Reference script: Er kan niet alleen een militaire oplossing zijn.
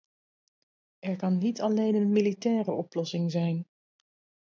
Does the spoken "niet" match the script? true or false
true